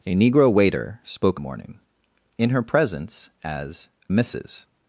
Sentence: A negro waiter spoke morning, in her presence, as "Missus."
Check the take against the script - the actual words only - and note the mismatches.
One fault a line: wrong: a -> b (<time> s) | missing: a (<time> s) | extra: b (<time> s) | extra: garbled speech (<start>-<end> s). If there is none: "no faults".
no faults